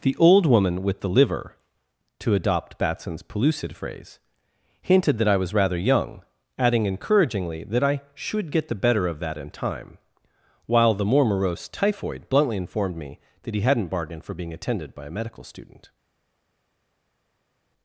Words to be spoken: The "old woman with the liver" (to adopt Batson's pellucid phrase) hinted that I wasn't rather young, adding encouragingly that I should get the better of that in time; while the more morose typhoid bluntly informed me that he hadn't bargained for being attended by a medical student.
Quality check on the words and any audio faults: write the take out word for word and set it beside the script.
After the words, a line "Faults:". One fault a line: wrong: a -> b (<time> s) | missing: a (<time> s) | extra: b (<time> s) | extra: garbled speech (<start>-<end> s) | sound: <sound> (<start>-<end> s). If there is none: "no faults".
The "old woman with the liver" (to adopt Batson's pellucid phrase) hinted that I was rather young, adding encouragingly that I should get the better of that in time; while the more morose typhoid bluntly informed me that he hadn't bargained for being attended by a medical student.
Faults:
wrong: wasn't -> was (5.4 s)